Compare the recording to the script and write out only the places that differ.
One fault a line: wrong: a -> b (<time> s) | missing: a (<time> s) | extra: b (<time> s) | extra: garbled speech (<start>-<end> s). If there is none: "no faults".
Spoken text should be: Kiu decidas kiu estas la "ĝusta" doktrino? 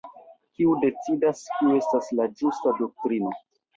no faults